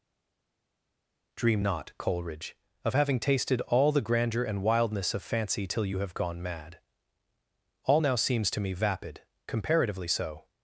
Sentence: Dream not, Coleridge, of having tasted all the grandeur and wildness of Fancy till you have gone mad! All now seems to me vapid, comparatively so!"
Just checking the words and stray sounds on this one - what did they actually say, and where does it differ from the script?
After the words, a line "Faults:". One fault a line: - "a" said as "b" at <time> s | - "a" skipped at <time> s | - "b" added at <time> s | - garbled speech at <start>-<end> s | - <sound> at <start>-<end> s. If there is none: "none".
Dream not, Coleridge, of having tasted all the grandeur and wildness of Fancy till you have gone mad! All now seems to me vapid, comparatively so!"
Faults:
none